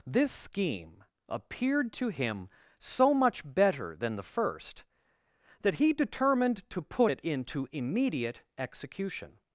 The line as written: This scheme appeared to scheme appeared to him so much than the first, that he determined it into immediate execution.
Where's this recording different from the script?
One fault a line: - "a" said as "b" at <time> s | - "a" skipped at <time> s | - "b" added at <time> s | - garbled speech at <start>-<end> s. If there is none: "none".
- "scheme appeared to" skipped at 2.1 s
- "better" added at 3.5 s
- "to put" added at 6.7 s